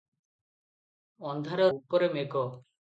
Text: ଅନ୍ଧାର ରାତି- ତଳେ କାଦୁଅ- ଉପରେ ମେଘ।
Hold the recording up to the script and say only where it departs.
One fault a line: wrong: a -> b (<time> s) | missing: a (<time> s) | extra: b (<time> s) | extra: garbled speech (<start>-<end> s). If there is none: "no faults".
missing: ରାତି ତଳେ କାଦୁଅ (1.7 s)